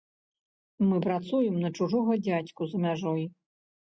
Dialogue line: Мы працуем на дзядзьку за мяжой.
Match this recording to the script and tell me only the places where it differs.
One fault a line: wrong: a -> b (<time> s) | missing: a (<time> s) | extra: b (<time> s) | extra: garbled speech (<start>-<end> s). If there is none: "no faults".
extra: чужога (1.8 s)